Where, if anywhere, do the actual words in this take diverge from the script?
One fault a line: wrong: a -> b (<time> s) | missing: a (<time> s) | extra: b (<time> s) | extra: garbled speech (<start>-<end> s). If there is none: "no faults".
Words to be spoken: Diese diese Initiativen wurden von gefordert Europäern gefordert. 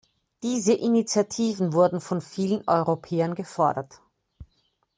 missing: diese (0.7 s)
wrong: gefordert -> vielen (2.2 s)